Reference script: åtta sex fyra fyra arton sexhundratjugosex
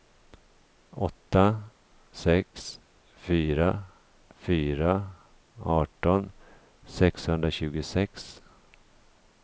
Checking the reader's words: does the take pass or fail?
pass